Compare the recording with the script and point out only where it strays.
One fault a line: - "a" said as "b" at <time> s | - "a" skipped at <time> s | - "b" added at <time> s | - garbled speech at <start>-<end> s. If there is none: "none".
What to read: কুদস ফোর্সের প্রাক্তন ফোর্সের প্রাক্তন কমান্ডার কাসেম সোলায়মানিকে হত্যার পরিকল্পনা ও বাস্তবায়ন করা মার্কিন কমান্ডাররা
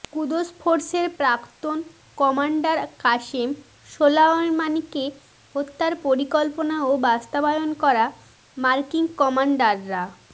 - "ফোর্সের প্রাক্তন" skipped at 1.8 s